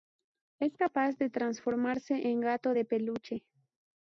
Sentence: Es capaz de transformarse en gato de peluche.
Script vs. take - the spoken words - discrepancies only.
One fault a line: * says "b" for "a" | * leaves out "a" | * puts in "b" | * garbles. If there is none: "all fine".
all fine